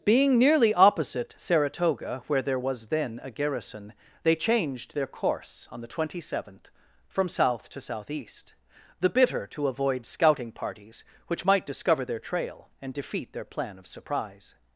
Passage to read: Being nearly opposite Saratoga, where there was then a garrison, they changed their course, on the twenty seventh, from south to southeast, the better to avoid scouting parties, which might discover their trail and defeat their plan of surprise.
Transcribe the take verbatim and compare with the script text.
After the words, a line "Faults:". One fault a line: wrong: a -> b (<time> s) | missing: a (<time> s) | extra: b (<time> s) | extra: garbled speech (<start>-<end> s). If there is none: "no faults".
Being nearly opposite Saratoga, where there was then a garrison, they changed their course, on the twenty seventh, from south to southeast, the bitter to avoid scouting parties, which might discover their trail and defeat their plan of surprise.
Faults:
wrong: better -> bitter (9.1 s)